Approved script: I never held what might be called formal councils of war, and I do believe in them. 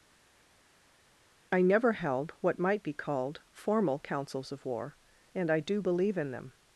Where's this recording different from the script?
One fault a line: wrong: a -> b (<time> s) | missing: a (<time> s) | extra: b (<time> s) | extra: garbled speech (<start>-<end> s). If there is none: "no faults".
no faults